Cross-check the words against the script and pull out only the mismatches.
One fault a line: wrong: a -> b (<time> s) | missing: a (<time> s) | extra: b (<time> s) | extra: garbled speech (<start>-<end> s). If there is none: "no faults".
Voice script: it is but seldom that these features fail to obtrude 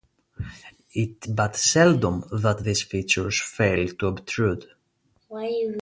missing: is (1.3 s)